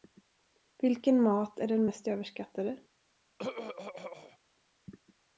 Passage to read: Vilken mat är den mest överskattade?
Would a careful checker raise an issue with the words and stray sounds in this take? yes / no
yes